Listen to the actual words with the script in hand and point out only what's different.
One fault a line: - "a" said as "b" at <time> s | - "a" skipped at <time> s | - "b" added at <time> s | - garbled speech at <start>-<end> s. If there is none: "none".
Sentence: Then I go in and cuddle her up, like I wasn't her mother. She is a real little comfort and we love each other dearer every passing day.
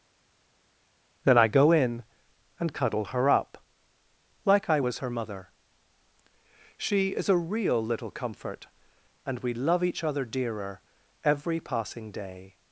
- "wasn't" said as "was" at 4.8 s